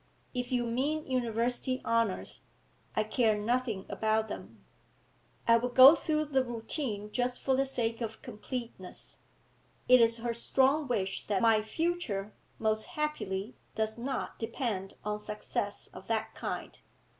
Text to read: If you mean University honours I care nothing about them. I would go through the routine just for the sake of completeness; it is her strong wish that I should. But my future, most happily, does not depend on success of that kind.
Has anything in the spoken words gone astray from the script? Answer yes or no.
yes